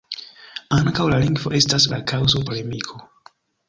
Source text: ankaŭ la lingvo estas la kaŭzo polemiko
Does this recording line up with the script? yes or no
yes